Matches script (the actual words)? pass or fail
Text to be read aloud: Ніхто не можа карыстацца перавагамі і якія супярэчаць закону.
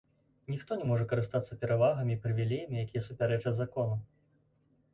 fail